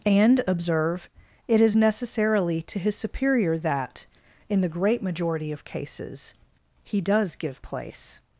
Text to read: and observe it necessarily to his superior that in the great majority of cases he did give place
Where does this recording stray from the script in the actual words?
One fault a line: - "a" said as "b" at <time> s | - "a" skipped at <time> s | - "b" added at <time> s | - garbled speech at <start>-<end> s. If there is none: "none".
- "is" added at 1.6 s
- "did" said as "does" at 7.0 s